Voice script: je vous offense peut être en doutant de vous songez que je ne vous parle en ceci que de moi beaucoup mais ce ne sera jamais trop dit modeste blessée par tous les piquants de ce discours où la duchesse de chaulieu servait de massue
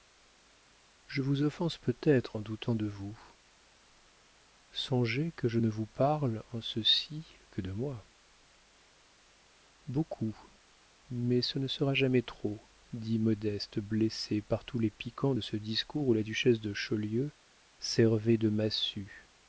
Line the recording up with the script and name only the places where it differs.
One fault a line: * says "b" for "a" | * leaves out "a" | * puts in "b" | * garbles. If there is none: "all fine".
all fine